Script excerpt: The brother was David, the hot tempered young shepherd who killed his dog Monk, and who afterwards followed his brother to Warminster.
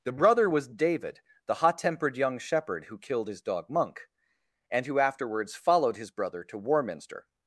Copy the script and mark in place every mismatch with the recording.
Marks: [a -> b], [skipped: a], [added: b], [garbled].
The brother was David, the hot tempered young shepherd who killed his dog Monk, and who afterwards followed his brother to Warminster.